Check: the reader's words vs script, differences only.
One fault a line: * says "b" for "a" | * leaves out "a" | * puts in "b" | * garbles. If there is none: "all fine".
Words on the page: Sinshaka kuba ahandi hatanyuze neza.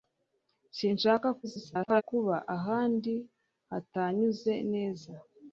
* garbles